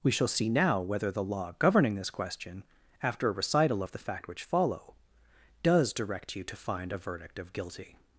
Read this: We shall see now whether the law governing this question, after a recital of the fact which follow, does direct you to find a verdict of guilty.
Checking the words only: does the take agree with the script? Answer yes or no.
yes